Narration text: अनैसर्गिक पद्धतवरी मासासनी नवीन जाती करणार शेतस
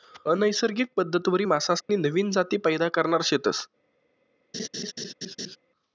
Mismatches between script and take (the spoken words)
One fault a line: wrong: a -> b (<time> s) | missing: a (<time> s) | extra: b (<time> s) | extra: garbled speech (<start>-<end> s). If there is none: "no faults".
extra: पैदा (2.6 s)